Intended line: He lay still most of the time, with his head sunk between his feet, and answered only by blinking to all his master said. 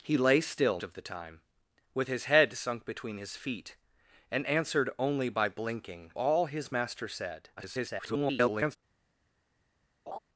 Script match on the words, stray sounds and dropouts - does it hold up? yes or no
no